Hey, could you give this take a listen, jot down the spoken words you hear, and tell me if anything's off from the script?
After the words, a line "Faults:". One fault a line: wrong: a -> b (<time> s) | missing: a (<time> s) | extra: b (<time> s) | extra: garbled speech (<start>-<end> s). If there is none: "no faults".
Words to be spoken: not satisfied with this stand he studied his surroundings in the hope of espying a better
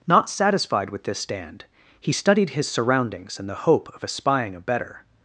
not satisfied with this stand he studied his surroundings in the hope of espying a better
Faults:
no faults